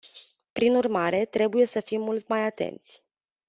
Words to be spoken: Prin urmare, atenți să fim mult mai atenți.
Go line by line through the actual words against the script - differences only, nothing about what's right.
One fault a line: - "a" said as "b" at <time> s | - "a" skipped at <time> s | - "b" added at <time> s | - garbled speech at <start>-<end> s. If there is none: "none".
- "atenți" said as "trebuie" at 1.2 s